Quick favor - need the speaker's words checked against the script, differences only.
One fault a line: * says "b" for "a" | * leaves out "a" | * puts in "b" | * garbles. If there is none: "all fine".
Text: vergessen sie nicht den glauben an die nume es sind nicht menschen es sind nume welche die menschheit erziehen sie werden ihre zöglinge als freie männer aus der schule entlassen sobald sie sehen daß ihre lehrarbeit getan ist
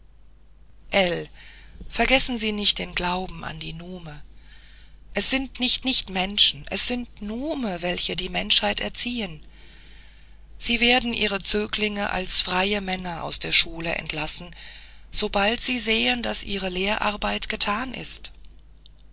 * puts in "nicht"